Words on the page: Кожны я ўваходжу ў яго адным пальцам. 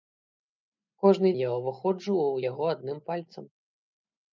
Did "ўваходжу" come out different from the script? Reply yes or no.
no